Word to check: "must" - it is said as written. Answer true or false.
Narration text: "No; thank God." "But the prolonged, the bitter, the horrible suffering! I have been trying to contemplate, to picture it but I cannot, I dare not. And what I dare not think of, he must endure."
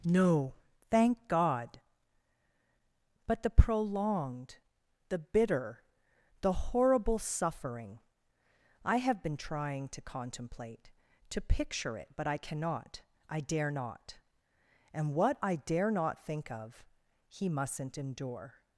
false